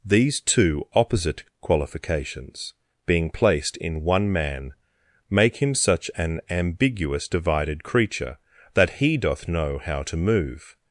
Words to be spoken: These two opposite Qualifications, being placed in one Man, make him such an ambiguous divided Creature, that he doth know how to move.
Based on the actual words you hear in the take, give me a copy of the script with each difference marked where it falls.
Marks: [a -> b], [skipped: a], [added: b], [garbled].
These two opposite Qualifications, being placed in one Man, make him such an ambiguous divided Creature, that he doth know how to move.